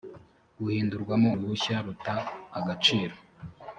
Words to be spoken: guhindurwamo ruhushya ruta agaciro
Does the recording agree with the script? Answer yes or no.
yes